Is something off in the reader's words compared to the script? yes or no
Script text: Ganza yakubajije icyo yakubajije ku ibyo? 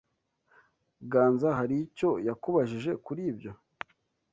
yes